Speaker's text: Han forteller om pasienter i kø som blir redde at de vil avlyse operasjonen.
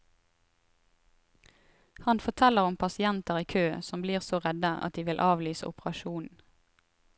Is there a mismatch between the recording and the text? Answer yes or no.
yes